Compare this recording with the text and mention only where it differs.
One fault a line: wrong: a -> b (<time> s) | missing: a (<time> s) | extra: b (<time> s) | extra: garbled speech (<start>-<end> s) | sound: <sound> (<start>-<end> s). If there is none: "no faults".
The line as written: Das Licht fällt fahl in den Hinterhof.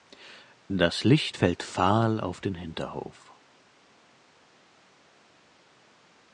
wrong: in -> auf (2.2 s)